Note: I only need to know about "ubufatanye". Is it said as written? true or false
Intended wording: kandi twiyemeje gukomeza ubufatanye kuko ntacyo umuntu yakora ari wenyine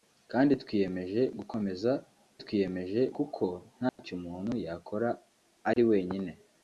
false